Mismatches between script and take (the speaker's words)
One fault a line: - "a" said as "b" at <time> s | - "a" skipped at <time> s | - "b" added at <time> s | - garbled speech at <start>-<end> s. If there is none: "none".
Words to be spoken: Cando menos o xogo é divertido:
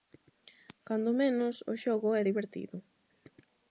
none